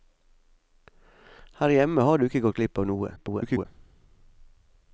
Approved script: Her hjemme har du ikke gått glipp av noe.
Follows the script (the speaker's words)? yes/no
no